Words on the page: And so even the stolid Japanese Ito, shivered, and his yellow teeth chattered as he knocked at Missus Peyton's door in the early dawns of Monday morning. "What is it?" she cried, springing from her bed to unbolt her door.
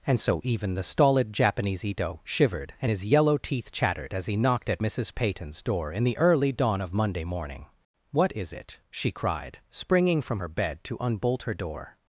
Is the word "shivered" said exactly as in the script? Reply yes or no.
yes